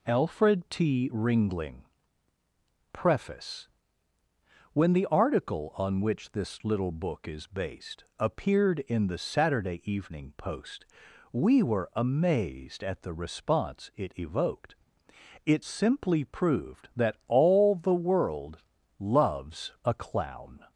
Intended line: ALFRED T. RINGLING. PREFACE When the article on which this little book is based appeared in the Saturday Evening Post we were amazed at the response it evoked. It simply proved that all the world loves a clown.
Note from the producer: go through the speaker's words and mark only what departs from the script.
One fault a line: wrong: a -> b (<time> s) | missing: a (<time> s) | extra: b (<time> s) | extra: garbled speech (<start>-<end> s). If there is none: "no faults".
no faults